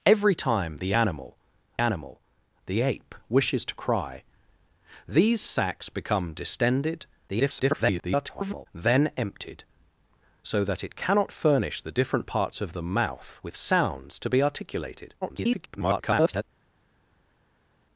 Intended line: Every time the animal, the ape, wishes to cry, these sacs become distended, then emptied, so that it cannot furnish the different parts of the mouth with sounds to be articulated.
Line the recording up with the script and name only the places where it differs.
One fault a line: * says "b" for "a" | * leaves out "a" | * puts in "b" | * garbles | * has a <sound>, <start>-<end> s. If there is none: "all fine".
* puts in "animal"
* garbles
* garbles